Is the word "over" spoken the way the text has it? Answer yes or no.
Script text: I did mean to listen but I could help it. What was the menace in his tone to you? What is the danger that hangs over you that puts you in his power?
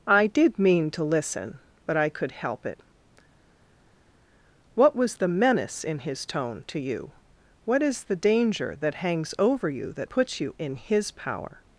yes